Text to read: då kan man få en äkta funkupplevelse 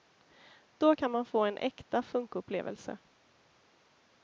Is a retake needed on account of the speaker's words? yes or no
no